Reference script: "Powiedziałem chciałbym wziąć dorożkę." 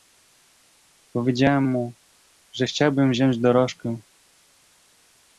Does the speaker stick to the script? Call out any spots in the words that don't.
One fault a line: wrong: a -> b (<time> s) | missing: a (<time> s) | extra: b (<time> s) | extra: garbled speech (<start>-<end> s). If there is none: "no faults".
extra: mu że (1.6 s)